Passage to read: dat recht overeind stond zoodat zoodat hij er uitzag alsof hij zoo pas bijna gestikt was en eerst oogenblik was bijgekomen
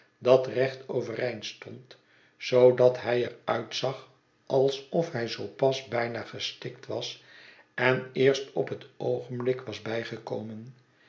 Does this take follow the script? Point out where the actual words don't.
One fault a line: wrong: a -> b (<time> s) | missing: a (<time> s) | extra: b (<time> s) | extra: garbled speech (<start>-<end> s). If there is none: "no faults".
missing: zoodat (3.0 s)
extra: op het (8.5 s)